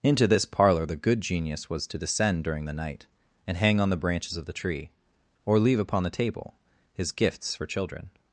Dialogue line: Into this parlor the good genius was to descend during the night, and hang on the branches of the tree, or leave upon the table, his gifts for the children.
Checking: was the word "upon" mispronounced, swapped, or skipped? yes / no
no